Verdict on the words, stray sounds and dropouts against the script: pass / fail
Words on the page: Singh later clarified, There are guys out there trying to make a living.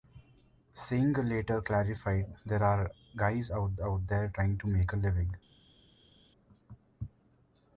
fail